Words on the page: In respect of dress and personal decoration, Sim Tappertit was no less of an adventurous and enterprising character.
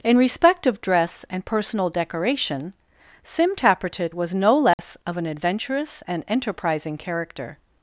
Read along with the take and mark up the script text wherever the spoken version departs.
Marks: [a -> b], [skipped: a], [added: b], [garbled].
In respect of dress and personal decoration, Sim Tappertit was no less of an adventurous and enterprising character.